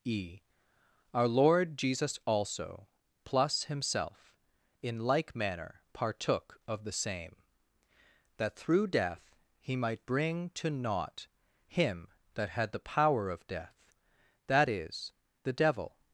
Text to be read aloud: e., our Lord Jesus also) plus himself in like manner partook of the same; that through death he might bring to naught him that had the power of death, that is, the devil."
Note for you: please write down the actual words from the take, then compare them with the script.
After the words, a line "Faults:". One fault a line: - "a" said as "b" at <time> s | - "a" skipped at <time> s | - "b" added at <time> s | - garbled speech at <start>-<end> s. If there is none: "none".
e., our Lord Jesus also) plus himself in like manner partook of the same; that through death he might bring to naught him that had the power of death, that is, the devil."
Faults:
none